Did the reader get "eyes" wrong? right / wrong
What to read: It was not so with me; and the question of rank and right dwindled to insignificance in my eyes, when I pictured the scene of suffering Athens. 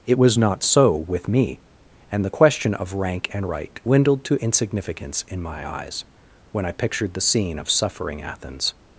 right